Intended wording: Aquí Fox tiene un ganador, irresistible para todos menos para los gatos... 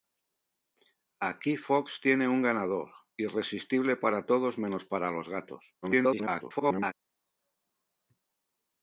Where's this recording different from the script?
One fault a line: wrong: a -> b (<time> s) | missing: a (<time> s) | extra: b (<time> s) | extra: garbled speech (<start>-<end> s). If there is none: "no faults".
extra: garbled speech (5.8-6.9 s)